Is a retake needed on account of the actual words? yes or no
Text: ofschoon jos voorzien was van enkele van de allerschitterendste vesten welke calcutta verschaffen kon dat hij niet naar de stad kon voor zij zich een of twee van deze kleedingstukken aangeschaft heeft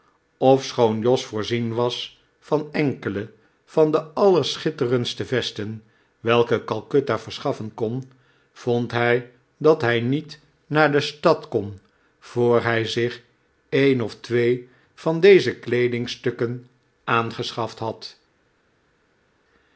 yes